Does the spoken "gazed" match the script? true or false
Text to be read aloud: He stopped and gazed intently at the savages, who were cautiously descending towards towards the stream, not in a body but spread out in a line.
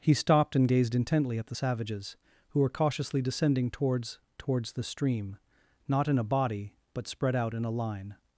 true